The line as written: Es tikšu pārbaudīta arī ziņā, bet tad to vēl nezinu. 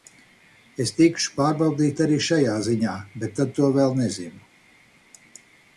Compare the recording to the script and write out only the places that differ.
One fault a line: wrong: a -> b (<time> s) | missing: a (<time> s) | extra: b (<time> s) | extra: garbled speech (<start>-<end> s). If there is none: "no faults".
extra: šajā (2.3 s)